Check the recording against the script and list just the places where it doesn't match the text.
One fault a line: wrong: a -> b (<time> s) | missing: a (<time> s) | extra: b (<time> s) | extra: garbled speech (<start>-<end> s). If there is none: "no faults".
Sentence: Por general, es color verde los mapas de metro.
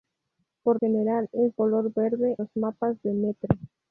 no faults